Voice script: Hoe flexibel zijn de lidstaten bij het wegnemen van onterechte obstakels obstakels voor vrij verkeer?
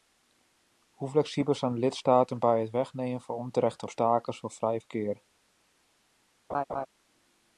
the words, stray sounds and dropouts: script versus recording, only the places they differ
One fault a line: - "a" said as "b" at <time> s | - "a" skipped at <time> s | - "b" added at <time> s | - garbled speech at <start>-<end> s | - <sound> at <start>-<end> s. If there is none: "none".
- "obstakels" skipped at 4.4 s
- laugh at 6.5-6.9 s